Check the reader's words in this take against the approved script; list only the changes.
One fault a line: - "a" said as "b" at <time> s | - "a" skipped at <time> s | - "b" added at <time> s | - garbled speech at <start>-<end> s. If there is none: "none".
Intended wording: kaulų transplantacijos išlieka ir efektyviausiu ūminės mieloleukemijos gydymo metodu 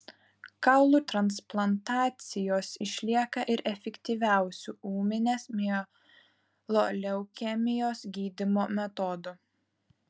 none